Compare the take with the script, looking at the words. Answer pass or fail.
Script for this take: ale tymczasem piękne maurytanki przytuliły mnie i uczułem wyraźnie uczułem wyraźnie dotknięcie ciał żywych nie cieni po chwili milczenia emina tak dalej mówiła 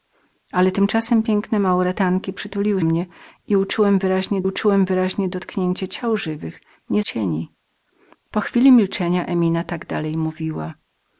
pass